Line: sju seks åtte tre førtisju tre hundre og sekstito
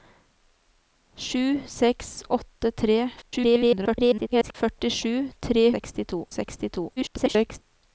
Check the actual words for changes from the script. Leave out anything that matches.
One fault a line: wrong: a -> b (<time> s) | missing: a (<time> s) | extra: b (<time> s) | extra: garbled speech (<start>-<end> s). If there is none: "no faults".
extra: garbled speech (3.2-4.5 s)
wrong: hundre -> sekstito (5.8 s)
extra: garbled speech (7.0-7.6 s)